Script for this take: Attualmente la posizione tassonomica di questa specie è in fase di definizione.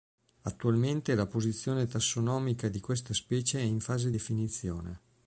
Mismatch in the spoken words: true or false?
true